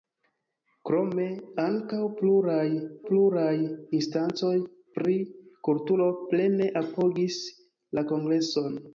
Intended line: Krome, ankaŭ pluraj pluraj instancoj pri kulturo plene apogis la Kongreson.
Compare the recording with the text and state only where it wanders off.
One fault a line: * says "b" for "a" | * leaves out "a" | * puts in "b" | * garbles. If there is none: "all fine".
all fine